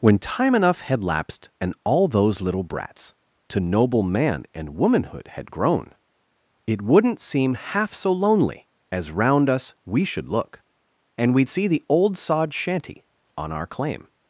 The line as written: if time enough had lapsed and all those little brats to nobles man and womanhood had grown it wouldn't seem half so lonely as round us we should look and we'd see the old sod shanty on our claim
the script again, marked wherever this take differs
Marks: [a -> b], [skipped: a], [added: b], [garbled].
[if -> when] time enough had lapsed and all those little brats to [nobles -> noble] man and womanhood had grown it wouldn't seem half so lonely as round us we should look and we'd see the old sod shanty on our claim